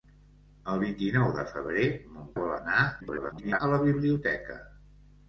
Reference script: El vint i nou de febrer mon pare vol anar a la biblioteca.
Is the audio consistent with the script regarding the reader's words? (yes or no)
no